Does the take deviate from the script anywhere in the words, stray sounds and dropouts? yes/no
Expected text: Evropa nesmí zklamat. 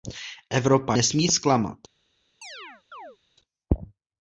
yes